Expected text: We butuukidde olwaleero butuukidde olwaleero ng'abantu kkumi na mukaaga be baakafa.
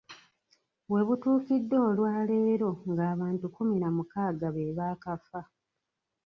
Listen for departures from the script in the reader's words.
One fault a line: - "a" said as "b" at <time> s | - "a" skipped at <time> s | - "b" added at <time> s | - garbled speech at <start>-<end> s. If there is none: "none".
- "butuukidde olwaleero" skipped at 2.7 s